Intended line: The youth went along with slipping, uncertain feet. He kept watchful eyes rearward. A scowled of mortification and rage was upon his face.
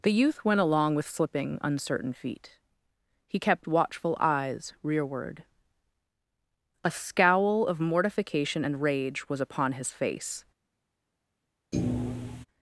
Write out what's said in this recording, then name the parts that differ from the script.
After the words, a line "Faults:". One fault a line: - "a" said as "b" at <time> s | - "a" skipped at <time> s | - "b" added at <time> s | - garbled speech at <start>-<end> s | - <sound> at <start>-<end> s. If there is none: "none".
The youth went along with slipping, uncertain feet. He kept watchful eyes rearward. A scowl of mortification and rage was upon his face.
Faults:
- "scowled" said as "scowl" at 6.9 s
- thud at 11.7-12.5 s